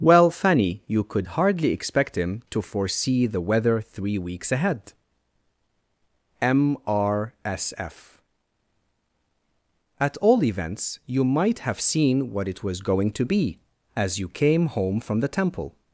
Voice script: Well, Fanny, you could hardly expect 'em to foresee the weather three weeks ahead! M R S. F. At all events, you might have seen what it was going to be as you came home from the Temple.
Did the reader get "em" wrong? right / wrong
wrong